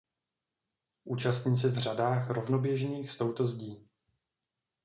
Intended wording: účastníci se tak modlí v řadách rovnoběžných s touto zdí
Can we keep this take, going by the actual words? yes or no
no